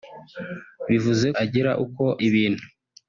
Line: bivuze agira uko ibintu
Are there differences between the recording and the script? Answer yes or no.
no